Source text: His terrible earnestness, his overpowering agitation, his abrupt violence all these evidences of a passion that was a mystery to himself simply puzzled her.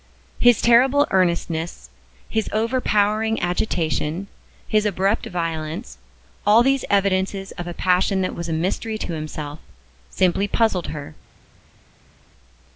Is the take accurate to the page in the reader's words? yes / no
yes